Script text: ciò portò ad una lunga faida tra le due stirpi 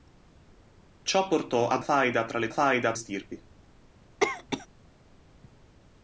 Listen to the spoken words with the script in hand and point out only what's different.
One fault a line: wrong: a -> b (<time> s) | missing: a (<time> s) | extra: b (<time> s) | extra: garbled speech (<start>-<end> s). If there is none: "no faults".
missing: una lunga (1.8 s)
wrong: due -> faida (2.5 s)